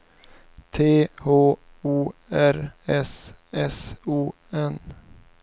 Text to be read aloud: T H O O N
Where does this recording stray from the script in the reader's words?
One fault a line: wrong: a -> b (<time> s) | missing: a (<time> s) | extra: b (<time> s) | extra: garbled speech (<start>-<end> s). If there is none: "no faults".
extra: R S S (2.3 s)